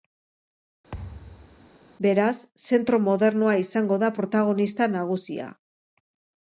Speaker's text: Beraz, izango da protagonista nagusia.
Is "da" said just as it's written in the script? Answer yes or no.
yes